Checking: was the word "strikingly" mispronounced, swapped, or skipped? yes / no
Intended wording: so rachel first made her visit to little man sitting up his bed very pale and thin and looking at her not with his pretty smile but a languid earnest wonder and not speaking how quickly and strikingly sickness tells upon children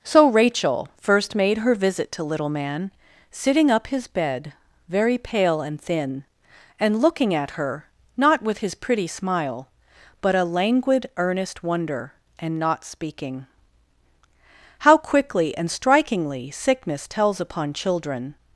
no